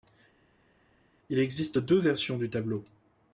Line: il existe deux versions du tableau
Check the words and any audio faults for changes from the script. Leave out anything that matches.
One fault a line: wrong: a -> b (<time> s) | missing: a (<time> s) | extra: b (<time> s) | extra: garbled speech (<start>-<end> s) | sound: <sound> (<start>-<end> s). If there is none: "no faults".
no faults